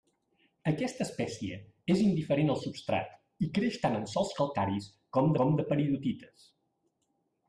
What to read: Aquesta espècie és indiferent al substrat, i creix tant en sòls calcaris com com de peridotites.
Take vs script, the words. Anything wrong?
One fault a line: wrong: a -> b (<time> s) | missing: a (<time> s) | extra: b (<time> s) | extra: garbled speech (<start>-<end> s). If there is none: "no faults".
no faults